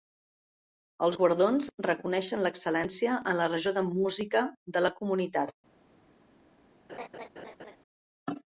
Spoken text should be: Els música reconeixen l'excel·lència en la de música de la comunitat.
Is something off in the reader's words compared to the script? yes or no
yes